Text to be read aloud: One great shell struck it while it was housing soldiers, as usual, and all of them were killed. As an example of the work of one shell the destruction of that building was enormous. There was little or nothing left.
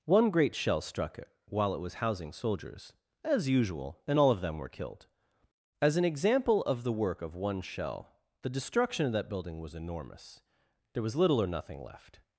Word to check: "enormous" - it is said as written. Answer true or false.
true